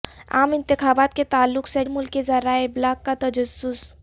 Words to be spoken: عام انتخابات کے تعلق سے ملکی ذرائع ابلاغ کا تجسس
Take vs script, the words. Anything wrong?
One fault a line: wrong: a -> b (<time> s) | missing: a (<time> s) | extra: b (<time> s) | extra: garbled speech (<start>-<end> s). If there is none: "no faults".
no faults